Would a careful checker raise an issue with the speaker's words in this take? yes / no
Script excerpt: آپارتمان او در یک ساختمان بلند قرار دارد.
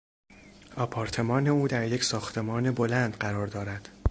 no